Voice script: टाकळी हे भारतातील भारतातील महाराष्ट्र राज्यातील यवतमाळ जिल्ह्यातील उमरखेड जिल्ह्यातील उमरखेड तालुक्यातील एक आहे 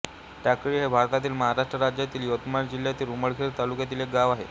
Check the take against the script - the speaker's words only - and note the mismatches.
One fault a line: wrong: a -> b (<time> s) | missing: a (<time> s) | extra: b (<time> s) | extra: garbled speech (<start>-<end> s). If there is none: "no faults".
missing: भारतातील (1.3 s)
missing: जिल्ह्यातील उमरखेड (3.6 s)
extra: गाव (4.1 s)